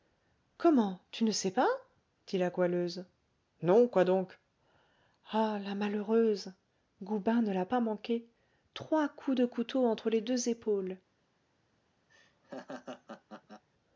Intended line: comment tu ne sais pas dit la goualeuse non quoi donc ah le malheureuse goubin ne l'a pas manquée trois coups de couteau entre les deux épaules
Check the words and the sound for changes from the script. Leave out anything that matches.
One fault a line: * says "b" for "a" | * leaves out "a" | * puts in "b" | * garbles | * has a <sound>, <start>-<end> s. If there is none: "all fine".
* says "la" for "le"
* has a laugh, 12.1-13.6 s